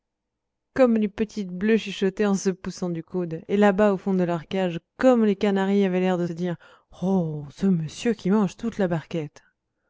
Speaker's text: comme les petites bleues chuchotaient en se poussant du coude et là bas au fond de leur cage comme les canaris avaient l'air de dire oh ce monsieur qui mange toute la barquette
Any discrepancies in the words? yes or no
no